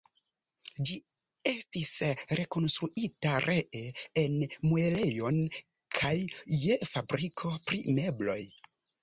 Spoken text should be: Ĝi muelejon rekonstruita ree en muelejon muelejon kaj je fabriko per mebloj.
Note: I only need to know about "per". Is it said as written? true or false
false